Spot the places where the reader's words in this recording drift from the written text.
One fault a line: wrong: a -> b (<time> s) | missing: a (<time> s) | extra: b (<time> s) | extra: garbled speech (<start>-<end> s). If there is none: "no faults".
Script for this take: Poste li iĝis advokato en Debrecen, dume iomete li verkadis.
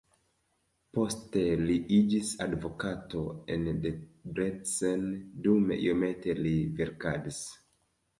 no faults